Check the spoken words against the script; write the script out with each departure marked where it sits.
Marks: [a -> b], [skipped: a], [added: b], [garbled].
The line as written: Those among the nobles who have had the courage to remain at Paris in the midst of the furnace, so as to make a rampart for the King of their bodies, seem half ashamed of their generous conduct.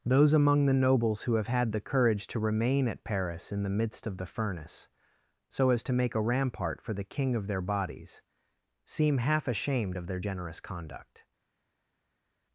Those among the nobles who have had the courage to remain at Paris in the midst of the furnace, so as to make a rampart for the King of their bodies, seem half ashamed of their generous conduct.